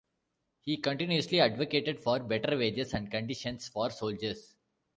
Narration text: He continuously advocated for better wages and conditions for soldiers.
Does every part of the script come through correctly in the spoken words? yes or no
yes